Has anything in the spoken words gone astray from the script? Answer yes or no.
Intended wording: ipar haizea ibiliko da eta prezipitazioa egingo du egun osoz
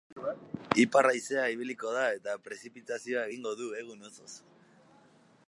no